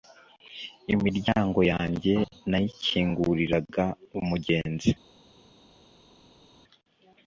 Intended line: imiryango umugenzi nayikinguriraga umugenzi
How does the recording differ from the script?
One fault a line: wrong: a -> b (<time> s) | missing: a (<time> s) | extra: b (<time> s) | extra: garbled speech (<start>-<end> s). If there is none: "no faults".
wrong: umugenzi -> yanjye (1.7 s)